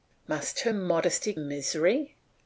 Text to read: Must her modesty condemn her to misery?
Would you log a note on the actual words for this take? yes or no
yes